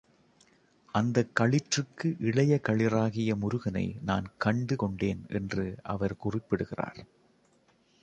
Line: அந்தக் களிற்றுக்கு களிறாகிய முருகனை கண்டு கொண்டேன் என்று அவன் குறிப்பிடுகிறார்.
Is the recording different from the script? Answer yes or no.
yes